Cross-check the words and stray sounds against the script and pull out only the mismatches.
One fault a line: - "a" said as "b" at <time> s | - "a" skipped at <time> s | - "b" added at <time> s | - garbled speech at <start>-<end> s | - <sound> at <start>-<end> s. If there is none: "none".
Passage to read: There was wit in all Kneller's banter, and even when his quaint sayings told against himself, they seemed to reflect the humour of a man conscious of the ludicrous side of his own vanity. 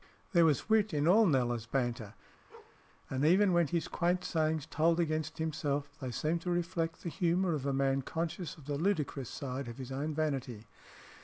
- bark at 2.5-2.8 s